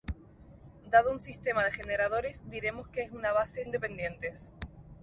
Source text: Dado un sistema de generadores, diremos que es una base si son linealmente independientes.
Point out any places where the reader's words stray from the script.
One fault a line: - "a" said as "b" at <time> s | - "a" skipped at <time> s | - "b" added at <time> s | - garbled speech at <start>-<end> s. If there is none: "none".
- "si son linealmente" skipped at 3.6 s